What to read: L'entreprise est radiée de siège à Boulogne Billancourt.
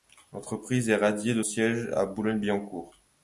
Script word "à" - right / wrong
right